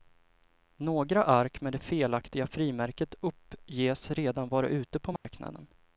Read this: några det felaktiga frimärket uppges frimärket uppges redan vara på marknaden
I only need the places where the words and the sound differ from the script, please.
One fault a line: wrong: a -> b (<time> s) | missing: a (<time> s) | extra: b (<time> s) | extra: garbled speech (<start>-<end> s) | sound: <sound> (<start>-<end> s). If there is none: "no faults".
extra: ark med (1.2 s)
missing: frimärket uppges (4.1 s)
extra: ute (4.7 s)
sound: dropout (5.2-5.2 s)